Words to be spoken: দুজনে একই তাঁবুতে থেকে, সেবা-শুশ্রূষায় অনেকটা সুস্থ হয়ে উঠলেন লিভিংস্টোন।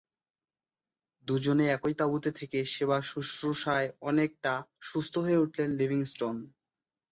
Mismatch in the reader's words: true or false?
false